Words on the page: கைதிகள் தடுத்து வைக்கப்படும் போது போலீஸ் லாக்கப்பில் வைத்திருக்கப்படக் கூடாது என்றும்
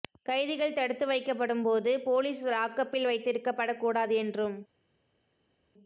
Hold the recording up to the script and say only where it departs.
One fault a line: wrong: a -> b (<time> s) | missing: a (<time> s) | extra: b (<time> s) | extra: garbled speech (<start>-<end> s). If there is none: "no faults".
no faults